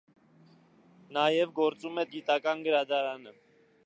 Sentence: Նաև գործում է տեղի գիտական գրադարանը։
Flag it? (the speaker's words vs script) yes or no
yes